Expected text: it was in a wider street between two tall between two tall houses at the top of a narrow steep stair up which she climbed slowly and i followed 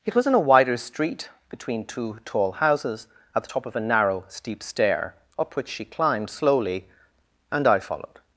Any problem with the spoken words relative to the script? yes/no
yes